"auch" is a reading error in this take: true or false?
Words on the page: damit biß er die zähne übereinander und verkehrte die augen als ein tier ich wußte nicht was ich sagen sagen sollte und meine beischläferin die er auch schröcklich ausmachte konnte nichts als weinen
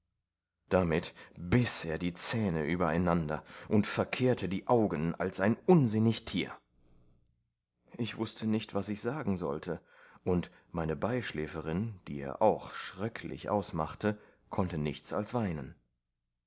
false